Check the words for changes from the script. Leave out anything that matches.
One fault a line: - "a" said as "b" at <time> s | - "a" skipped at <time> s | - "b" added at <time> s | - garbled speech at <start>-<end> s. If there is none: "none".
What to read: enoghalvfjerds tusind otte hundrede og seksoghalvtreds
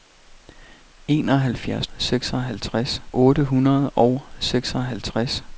- "tusind" said as "seksoghalvtreds" at 2.0 s